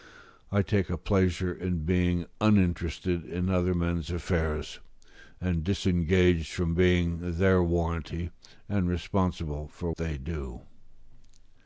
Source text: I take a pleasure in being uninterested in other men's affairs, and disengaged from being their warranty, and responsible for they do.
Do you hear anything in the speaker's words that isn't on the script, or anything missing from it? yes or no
no